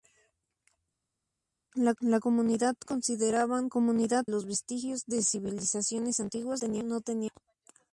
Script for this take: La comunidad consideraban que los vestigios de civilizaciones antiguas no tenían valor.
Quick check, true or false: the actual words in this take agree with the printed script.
false